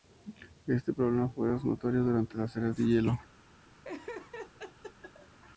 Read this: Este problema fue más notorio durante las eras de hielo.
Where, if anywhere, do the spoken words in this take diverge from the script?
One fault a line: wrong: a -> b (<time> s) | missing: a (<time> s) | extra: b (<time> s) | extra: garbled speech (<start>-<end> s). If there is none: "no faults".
no faults